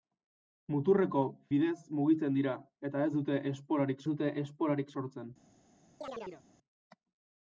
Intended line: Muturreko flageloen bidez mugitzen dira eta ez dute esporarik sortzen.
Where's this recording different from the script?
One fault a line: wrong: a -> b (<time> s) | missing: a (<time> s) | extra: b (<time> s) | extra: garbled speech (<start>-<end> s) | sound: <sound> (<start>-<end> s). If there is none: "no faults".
missing: flageloen (1.2 s)
extra: dute esporarik (4.1 s)
sound: chirp (6.0-6.4 s)